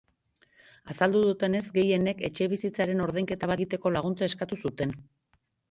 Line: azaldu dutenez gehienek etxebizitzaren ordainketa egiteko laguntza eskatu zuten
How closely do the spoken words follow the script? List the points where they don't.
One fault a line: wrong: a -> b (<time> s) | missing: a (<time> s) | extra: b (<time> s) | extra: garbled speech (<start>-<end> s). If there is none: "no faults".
no faults